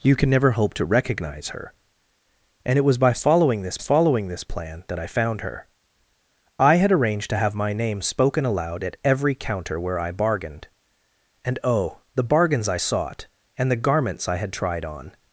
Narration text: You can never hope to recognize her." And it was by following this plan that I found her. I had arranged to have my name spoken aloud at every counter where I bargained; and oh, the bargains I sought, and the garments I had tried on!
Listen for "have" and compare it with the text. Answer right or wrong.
right